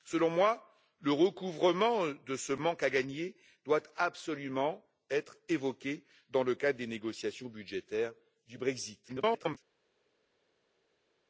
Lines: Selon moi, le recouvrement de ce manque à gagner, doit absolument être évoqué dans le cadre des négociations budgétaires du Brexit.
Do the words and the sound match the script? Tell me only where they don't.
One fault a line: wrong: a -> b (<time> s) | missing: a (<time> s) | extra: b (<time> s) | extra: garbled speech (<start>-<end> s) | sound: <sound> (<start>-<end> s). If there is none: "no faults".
extra: garbled speech (9.1-9.6 s)